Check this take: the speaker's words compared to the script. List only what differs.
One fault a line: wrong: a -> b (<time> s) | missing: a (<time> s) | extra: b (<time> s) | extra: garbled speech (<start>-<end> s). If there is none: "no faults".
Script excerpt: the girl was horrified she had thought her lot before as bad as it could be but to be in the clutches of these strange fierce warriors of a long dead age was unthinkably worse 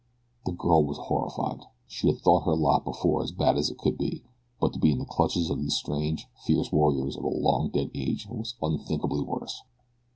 no faults